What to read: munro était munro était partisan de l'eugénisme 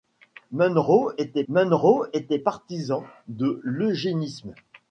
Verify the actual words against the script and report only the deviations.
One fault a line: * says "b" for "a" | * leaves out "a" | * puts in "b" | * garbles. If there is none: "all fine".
all fine